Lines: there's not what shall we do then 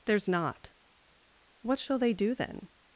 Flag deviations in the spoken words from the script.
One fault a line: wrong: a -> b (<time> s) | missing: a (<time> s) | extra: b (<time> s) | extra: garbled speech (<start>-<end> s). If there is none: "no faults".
wrong: we -> they (2.0 s)